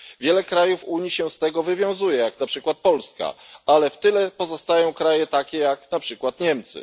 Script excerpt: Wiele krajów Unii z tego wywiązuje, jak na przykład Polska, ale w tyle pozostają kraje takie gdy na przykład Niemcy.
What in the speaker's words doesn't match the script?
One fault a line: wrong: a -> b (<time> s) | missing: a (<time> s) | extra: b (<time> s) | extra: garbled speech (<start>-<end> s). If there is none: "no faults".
extra: się (1.1 s)
wrong: gdy -> jak (5.6 s)